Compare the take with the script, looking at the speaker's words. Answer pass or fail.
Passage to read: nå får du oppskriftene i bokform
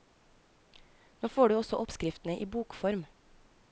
fail